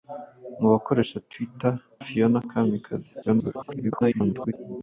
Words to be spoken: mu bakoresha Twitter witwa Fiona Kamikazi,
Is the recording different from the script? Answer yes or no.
yes